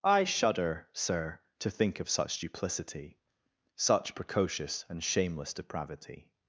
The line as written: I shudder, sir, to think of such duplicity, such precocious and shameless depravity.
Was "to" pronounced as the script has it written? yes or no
yes